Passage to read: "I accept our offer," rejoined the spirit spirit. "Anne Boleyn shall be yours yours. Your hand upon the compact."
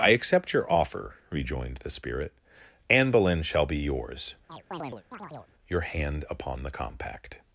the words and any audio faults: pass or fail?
fail